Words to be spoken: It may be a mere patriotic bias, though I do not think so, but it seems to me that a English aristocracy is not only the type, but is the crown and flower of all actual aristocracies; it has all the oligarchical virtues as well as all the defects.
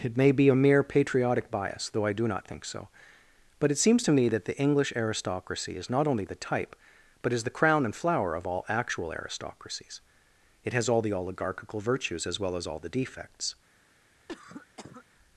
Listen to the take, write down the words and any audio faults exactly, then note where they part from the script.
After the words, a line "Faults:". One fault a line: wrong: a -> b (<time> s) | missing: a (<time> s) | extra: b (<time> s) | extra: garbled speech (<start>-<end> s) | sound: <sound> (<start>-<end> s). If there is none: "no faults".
It may be a mere patriotic bias, though I do not think so, but it seems to me that the English aristocracy is not only the type, but is the crown and flower of all actual aristocracies; it has all the oligarchical virtues as well as all the defects.
Faults:
wrong: a -> the (4.5 s)
sound: cough (14.3-15.0 s)